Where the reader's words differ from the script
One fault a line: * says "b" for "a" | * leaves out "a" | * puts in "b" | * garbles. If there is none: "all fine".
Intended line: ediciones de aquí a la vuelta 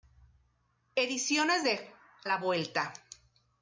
* leaves out "aquí a"